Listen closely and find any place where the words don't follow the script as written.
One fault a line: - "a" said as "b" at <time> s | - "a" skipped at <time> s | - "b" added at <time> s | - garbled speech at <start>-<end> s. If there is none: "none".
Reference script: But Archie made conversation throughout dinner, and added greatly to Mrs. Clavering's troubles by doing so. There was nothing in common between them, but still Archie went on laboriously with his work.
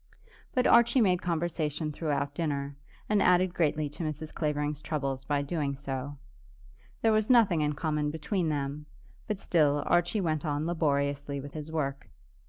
none